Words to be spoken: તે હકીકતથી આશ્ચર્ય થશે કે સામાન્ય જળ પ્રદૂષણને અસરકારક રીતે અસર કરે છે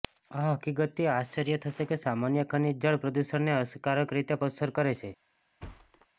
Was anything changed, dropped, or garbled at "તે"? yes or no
yes